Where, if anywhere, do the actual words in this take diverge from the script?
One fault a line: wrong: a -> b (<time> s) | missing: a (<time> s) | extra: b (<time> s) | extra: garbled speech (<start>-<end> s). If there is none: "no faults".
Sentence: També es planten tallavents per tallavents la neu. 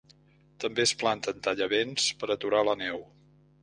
wrong: tallavents -> aturar (2.4 s)